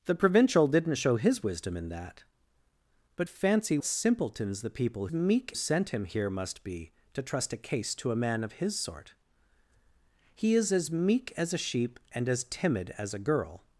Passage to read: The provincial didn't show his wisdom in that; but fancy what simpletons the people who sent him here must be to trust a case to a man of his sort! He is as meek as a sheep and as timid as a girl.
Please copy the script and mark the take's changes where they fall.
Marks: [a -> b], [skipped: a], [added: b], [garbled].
The provincial didn't show his wisdom in that; but fancy [skipped: what] simpletons the people [who -> meek] sent him here must be to trust a case to a man of his sort! He is as meek as a sheep and as timid as a girl.